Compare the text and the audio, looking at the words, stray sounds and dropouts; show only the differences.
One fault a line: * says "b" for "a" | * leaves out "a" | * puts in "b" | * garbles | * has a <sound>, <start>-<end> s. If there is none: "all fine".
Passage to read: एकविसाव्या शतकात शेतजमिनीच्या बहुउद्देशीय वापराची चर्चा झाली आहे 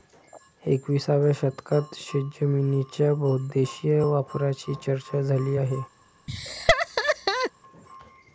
* has a laugh, 6.3-7.5 s